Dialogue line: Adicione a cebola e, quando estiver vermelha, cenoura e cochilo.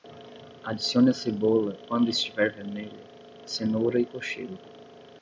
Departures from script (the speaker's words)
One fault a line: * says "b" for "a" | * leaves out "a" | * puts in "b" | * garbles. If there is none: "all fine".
* leaves out "e"